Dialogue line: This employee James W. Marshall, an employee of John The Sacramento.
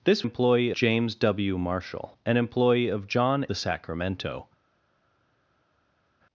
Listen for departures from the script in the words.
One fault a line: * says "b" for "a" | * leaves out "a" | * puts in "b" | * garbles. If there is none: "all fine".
all fine